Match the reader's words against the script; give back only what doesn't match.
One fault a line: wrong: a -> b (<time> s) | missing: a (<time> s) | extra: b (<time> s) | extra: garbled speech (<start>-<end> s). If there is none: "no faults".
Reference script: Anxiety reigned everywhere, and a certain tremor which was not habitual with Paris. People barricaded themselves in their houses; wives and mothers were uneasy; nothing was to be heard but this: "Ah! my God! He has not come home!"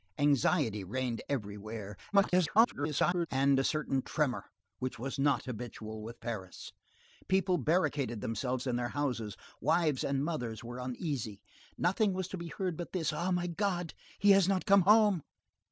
extra: garbled speech (2.1-3.3 s)